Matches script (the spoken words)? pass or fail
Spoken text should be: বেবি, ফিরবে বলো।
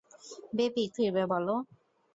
pass